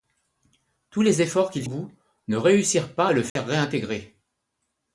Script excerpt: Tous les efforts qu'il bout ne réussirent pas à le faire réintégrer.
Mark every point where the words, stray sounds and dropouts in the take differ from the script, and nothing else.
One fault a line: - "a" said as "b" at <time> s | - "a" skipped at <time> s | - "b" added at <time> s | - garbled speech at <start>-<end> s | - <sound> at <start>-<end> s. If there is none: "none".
- dropout at 3.3-3.4 s